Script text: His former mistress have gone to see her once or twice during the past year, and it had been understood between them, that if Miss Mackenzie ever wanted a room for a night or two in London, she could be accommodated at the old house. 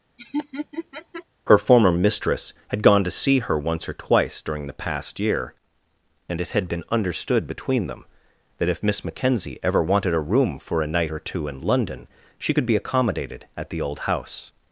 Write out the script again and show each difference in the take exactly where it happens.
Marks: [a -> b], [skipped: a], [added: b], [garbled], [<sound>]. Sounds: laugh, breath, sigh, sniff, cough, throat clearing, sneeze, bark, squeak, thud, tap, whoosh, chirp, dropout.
[laugh] [His -> Her] former mistress [have -> had] gone to see her once or twice during the past year, and it had been understood between them, that if Miss Mackenzie ever wanted a room for a night or two in London, she could be accommodated at the old house.